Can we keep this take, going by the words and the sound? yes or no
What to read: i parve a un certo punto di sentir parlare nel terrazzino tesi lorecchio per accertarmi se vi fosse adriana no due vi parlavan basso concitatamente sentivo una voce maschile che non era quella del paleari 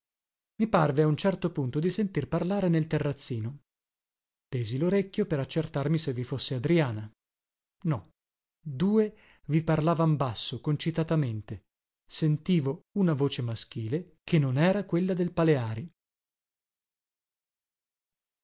yes